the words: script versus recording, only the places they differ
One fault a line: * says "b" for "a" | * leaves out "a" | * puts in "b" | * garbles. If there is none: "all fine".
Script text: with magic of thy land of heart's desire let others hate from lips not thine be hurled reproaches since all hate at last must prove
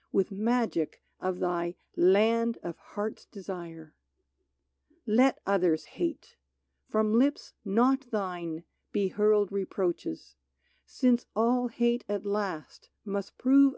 all fine